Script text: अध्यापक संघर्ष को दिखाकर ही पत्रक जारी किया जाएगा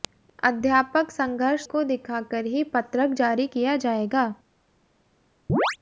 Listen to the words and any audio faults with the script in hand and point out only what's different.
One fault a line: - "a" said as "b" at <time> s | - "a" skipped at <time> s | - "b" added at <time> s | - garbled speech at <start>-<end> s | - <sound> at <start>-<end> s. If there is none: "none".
- chirp at 5.5-5.8 s